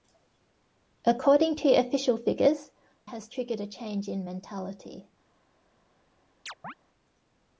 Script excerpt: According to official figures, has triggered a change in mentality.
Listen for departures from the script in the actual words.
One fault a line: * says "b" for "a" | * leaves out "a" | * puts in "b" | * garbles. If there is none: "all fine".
all fine